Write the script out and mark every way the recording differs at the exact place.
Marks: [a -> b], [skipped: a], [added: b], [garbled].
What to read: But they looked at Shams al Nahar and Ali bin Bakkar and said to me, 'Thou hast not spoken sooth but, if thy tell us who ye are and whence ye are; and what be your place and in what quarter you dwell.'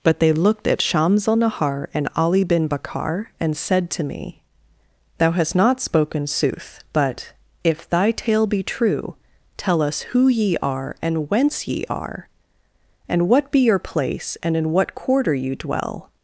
But they looked at Shams al Nahar and Ali bin Bakkar and said to me, 'Thou hast not spoken sooth but, if thy [added: tale be true] tell us who ye are and whence ye are; and what be your place and in what quarter you dwell.'